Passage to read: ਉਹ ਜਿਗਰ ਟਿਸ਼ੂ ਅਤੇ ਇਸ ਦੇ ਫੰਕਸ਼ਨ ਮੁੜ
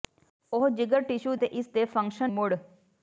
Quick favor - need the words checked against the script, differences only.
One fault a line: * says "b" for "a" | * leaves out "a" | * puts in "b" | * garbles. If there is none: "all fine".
all fine